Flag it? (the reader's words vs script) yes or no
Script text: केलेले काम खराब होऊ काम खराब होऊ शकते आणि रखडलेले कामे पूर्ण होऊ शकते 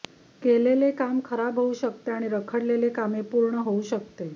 yes